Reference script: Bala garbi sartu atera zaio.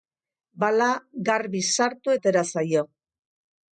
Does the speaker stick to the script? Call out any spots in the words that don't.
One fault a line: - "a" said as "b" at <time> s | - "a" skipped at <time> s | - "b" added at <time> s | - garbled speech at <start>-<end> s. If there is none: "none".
none